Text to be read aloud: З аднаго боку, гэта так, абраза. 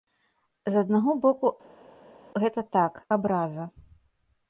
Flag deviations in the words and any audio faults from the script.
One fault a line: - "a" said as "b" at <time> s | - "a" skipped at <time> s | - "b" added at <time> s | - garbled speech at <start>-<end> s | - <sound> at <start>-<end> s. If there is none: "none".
none